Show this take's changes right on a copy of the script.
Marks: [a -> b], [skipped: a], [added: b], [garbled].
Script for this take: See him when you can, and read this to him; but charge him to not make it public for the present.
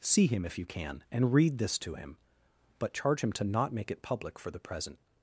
See him [when -> if] you can, and read this to him; but charge him to not make it public for the present.